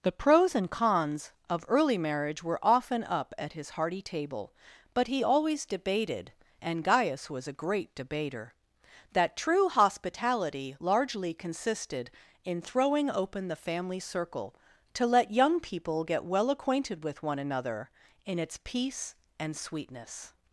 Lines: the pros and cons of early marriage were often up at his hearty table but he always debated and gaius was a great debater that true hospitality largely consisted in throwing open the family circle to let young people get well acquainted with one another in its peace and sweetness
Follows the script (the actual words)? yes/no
yes